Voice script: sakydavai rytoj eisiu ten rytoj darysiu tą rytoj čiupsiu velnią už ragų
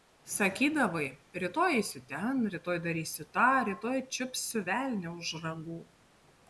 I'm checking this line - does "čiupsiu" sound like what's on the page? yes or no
yes